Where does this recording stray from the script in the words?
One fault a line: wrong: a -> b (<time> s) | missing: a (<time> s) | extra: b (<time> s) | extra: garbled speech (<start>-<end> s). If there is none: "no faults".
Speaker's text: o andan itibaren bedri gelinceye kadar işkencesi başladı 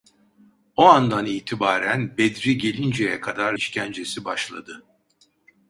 no faults